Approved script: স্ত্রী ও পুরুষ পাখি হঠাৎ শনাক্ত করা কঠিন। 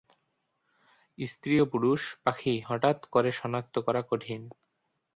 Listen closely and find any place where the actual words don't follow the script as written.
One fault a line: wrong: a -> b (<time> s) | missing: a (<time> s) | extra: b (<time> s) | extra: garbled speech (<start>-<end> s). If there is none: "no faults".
extra: করে (3.0 s)